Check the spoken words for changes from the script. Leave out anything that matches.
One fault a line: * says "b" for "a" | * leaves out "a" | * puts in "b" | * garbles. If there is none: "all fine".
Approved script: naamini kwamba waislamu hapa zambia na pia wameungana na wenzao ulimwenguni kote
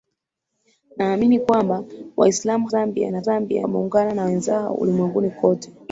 * leaves out "hapa"
* says "zambia" for "pia"